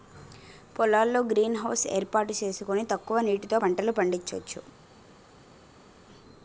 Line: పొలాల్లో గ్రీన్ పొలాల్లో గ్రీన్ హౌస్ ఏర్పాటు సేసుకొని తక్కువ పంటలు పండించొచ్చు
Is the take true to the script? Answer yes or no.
no